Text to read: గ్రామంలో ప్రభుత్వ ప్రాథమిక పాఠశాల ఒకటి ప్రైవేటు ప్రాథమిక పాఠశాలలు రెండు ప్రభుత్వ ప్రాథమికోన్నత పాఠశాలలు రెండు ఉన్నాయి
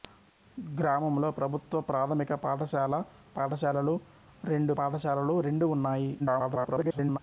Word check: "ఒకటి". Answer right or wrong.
wrong